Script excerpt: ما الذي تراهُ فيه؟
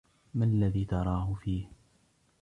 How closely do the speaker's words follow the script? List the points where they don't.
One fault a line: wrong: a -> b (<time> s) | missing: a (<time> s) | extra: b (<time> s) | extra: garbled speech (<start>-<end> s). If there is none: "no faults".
no faults